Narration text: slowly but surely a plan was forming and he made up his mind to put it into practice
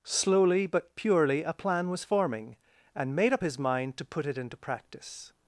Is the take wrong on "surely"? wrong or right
wrong